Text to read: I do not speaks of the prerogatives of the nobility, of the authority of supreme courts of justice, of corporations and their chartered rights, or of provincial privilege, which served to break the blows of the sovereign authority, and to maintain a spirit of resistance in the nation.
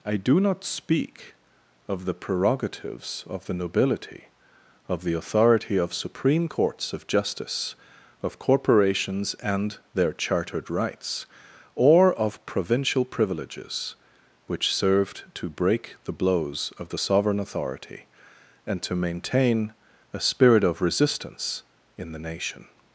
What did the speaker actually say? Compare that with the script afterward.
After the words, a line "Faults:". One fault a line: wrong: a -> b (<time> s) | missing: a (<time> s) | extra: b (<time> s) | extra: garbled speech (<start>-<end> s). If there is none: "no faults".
I do not speak of the prerogatives of the nobility, of the authority of supreme courts of justice, of corporations and their chartered rights, or of provincial privileges, which served to break the blows of the sovereign authority, and to maintain a spirit of resistance in the nation.
Faults:
wrong: speaks -> speak (0.6 s)
wrong: privilege -> privileges (13.0 s)